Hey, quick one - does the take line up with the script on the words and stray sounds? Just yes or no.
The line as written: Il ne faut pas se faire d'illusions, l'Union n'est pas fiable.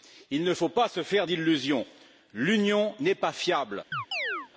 no